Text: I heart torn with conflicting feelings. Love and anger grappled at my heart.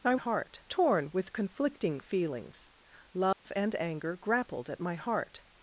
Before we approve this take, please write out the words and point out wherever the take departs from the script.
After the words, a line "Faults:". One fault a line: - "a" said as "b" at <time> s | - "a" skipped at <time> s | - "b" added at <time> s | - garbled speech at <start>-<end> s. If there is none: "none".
I heart torn with conflicting feelings. Love and anger grappled at my heart.
Faults:
none